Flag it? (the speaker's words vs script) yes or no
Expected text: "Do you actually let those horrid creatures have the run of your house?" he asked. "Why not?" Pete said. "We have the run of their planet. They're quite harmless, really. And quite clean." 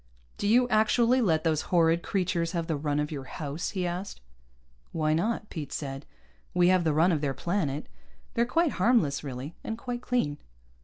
no